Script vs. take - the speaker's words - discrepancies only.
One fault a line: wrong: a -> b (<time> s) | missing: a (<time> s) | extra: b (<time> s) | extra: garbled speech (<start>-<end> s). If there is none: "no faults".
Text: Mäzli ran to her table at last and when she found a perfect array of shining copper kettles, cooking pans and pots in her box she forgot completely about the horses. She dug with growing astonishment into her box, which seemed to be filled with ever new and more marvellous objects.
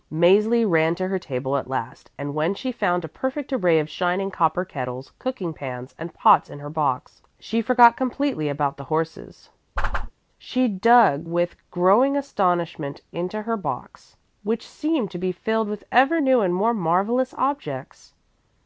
no faults